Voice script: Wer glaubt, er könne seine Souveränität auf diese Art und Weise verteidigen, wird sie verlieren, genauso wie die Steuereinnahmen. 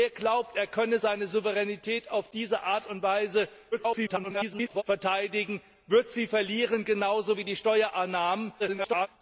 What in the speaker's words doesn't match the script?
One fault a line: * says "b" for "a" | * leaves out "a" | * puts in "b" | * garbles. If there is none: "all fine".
* garbles
* garbles